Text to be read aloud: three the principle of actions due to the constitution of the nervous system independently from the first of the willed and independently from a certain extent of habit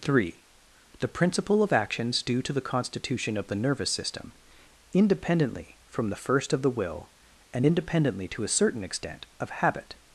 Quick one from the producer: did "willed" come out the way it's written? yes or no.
no